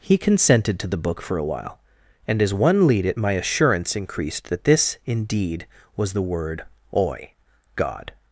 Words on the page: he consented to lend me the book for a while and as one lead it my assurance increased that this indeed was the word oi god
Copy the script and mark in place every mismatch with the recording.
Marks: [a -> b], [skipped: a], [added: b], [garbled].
he consented to [skipped: lend me] the book for a while and as one lead it my assurance increased that this indeed was the word oi god